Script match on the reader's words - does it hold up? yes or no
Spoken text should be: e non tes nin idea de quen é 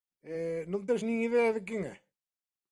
yes